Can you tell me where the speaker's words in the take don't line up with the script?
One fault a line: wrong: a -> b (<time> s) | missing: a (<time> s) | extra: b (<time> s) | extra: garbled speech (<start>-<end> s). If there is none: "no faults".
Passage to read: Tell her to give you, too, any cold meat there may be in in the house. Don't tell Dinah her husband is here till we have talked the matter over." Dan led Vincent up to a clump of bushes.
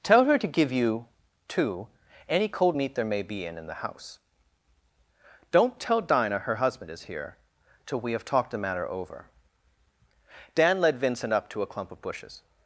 no faults